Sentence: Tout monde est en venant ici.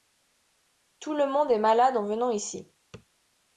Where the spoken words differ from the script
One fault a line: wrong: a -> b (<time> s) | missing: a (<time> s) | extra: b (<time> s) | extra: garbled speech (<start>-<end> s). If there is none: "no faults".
extra: le (1.1 s)
extra: malade (1.6 s)